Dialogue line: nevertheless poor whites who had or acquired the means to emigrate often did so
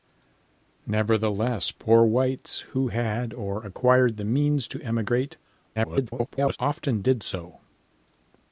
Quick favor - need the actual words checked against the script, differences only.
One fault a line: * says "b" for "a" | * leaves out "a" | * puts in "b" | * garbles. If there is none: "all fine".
* garbles